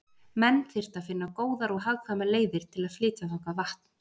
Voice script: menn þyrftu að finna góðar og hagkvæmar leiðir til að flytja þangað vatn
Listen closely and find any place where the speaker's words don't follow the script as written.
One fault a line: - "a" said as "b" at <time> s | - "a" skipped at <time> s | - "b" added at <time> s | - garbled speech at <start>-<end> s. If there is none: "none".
none